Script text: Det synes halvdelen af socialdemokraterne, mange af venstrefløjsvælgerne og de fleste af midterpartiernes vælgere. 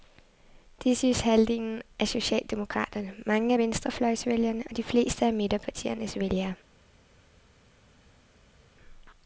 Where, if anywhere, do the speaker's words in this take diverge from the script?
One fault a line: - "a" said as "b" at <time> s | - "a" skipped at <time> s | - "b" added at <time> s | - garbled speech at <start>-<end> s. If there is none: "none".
none